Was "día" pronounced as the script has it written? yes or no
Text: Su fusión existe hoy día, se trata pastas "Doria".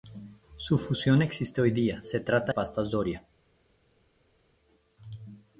yes